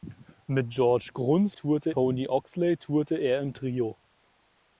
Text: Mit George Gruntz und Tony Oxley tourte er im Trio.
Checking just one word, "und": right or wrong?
wrong